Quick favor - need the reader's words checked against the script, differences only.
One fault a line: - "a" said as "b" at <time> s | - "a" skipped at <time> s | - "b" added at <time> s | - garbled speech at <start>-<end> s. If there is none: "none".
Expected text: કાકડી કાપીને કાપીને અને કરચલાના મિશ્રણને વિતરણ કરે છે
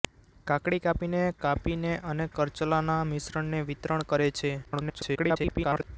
- garbled speech at 4.6-5.8 s